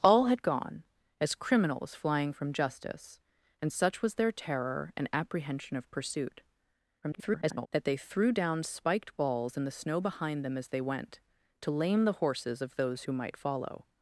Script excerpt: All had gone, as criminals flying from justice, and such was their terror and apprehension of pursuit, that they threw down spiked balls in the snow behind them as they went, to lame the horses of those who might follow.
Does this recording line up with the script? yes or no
no